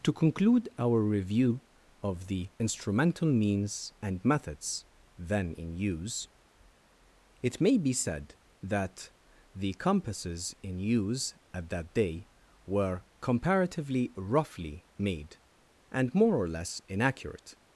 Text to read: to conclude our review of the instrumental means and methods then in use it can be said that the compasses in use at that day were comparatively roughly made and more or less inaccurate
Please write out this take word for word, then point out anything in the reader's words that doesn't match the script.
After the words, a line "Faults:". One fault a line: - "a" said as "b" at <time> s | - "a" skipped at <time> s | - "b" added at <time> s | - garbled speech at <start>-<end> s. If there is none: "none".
to conclude our review of the instrumental means and methods then in use it may be said that the compasses in use at that day were comparatively roughly made and more or less inaccurate
Faults:
- "can" said as "may" at 7.6 s